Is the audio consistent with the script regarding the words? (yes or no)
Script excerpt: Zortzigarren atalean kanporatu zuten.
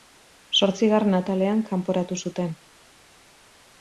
yes